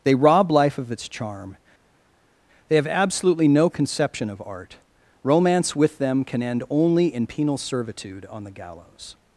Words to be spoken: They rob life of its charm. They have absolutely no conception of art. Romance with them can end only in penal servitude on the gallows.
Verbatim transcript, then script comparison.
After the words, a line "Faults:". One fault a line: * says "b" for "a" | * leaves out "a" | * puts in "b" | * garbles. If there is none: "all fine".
They rob life of its charm. They have absolutely no conception of art. Romance with them can end only in penal servitude on the gallows.
Faults:
all fine